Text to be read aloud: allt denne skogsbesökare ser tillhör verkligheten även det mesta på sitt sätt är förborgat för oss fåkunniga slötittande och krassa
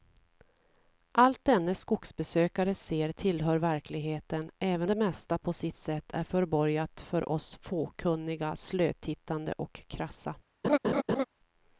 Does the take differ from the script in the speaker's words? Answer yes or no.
no